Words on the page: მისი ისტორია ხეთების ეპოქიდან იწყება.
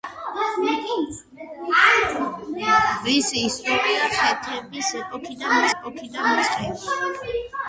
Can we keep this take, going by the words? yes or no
no